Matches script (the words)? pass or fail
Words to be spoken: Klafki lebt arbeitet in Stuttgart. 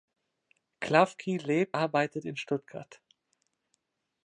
pass